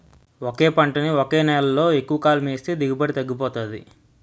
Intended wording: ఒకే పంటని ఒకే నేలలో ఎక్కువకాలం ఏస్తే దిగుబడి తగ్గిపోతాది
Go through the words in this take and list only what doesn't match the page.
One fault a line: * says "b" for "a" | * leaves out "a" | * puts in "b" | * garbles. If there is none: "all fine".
all fine